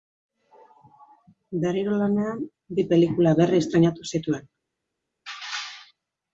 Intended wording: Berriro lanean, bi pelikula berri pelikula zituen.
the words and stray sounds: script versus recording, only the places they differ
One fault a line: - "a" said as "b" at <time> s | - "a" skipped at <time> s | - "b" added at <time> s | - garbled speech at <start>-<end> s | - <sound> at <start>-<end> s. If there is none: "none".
- "pelikula" said as "estreinatu" at 3.7 s